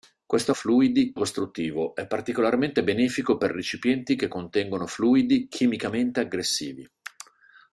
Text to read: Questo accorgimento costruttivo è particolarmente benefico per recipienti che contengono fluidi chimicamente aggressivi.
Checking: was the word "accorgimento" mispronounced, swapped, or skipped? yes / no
yes